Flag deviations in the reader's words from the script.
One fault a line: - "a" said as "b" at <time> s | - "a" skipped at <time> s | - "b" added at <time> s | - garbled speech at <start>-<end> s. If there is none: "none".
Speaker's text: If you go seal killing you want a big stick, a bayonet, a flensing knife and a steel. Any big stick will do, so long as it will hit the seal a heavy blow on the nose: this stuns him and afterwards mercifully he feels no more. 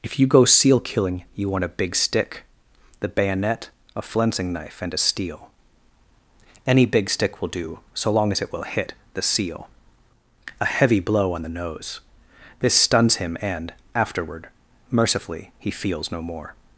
- "a" said as "the" at 3.0 s
- "afterwards" said as "afterward" at 13.9 s